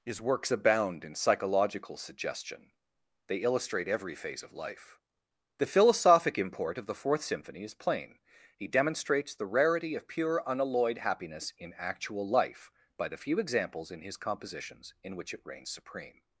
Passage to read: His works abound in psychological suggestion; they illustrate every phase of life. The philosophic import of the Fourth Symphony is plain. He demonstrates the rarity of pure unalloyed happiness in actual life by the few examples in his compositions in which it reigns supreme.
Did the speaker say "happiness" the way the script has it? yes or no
yes